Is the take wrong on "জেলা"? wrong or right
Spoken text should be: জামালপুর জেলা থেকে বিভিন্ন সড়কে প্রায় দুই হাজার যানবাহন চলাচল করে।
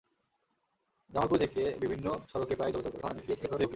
wrong